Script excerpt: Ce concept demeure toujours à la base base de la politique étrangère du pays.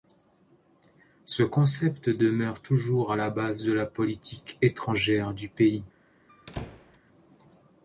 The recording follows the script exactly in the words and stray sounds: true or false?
false